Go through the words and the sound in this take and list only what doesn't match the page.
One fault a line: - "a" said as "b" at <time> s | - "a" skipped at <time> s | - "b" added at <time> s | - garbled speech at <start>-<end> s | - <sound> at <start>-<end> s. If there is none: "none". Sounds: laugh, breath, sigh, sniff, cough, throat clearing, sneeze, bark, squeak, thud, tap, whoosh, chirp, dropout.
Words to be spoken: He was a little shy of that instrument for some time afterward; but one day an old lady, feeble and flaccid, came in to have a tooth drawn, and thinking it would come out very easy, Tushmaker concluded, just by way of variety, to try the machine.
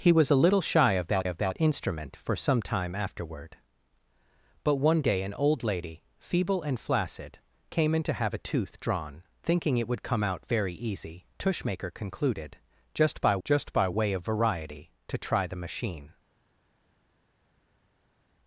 - "of that" added at 1.2 s
- "and" skipped at 9.2 s
- "just by" added at 13.4 s